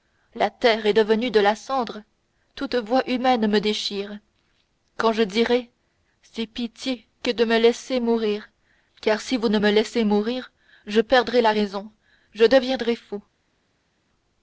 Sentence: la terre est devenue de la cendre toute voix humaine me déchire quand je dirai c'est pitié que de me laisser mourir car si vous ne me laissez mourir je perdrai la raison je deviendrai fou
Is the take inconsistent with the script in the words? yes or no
no